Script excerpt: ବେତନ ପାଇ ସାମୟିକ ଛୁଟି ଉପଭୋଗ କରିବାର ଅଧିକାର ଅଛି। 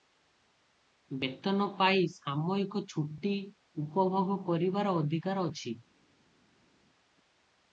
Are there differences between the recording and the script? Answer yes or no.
no